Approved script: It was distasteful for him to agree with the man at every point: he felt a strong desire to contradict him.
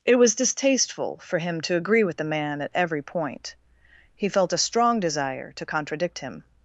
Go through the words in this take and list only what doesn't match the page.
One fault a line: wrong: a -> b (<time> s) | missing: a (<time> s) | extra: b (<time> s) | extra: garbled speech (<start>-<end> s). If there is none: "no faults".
no faults